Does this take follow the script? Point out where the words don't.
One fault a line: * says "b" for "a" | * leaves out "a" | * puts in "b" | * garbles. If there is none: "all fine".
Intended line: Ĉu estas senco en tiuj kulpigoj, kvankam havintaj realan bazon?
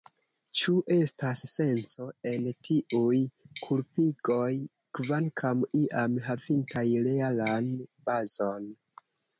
* puts in "iam"